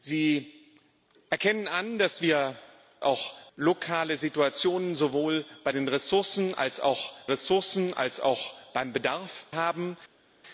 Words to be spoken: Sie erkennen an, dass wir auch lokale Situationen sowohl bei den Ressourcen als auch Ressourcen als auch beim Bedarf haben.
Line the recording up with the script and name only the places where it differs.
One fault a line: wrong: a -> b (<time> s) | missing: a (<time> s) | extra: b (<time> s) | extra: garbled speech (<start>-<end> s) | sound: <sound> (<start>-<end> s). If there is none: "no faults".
no faults